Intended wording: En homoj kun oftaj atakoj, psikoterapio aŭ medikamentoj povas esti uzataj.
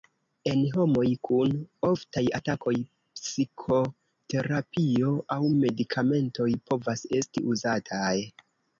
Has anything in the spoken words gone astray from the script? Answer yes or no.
no